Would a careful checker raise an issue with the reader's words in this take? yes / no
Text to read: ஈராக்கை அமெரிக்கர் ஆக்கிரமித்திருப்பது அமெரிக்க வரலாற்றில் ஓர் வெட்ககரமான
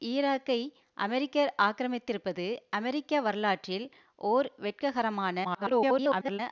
yes